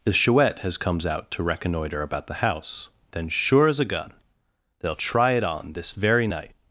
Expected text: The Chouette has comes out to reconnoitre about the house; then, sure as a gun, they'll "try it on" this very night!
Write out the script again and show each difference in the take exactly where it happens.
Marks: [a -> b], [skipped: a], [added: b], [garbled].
The Chouette has comes out to reconnoitre about the house; then, sure as a gun, they'll "try it on" this very night!